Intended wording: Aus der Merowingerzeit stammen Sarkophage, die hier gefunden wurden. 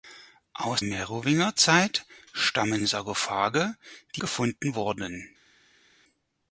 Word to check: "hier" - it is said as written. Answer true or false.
false